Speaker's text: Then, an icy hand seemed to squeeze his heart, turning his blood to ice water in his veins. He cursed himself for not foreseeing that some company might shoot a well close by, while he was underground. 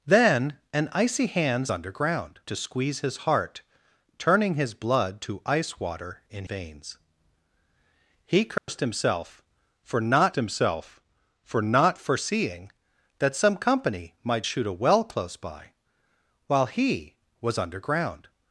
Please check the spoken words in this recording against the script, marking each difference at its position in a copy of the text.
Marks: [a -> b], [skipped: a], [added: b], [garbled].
Then, an icy hand [seemed -> underground] to squeeze his heart, turning his blood to ice water in [skipped: his] veins. He cursed himself for not [added: himself for not] foreseeing that some company might shoot a well close by, while he was underground.